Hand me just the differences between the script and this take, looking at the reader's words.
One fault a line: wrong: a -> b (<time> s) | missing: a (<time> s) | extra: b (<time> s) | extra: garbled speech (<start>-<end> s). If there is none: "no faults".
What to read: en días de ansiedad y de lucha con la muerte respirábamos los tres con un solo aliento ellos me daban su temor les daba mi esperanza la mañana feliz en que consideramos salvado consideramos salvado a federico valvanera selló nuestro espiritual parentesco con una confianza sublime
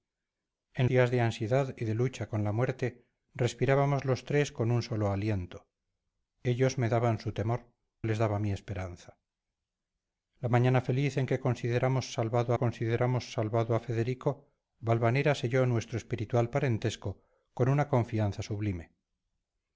no faults